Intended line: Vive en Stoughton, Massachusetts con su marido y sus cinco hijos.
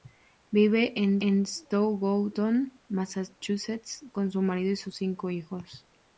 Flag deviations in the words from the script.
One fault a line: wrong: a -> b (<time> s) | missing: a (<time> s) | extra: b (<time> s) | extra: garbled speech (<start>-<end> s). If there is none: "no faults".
extra: en (1.2 s)